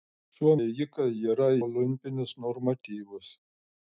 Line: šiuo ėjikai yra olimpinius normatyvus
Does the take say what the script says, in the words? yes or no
yes